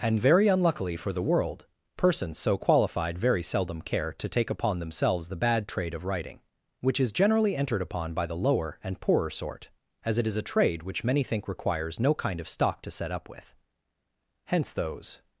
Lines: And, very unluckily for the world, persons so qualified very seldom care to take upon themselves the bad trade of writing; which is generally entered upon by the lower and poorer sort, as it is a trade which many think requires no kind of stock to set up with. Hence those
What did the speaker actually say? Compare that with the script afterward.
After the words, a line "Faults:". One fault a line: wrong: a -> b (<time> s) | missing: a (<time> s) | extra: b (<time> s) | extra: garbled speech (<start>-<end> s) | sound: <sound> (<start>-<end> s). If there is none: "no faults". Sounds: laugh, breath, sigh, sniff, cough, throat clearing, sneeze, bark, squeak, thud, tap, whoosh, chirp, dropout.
And, very unluckily for the world, persons so qualified very seldom care to take upon themselves the bad trade of writing; which is generally entered upon by the lower and poorer sort, as it is a trade which many think requires no kind of stock to set up with. Hence those
Faults:
no faults